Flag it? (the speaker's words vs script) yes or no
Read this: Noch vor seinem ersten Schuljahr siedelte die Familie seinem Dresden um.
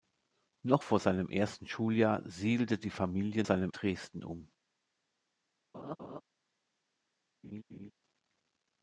no